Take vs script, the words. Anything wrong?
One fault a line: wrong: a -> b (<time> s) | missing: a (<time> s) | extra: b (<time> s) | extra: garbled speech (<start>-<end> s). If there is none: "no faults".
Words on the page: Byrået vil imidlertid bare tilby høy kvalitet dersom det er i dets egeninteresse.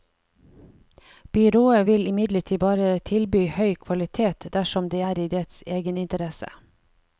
no faults